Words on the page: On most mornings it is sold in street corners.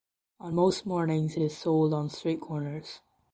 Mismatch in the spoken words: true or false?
true